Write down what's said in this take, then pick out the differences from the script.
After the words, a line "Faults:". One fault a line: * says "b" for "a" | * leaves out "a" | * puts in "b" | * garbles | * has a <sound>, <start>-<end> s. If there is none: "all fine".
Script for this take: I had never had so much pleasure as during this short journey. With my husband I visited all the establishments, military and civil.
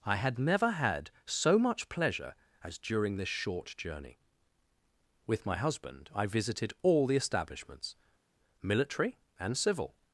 I had never had so much pleasure as during this short journey. With my husband I visited all the establishments, military and civil.
Faults:
all fine